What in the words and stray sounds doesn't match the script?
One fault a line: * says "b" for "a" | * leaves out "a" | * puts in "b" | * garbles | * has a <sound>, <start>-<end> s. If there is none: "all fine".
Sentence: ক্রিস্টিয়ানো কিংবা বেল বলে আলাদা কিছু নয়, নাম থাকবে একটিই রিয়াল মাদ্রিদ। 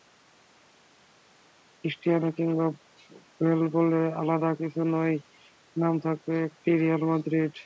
all fine